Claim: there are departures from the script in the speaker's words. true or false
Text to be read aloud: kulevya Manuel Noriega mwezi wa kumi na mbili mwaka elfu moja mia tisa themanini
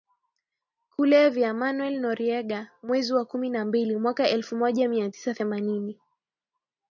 false